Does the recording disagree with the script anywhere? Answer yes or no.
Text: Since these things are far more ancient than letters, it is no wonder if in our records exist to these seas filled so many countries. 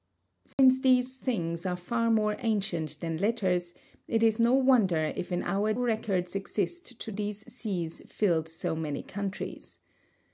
no